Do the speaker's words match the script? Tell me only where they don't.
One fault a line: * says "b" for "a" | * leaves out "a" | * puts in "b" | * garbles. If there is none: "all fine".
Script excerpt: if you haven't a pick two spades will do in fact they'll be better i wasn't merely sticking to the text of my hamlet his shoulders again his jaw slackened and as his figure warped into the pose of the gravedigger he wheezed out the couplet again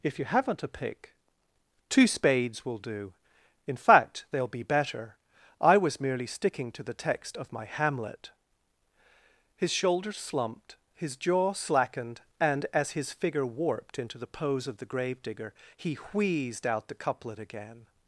* says "was" for "wasn't"
* says "slumped" for "again"